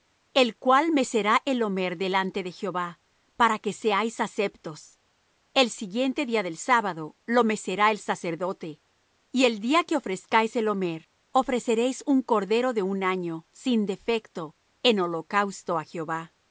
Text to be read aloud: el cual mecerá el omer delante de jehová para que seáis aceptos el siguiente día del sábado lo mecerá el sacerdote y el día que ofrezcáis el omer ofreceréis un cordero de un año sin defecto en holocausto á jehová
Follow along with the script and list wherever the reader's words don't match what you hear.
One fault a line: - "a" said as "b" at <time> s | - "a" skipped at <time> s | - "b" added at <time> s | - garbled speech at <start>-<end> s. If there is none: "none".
none